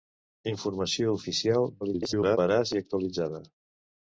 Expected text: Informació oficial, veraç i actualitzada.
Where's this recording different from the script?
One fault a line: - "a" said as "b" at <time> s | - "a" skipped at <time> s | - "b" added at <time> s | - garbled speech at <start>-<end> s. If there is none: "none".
- garbled speech at 1.8-2.4 s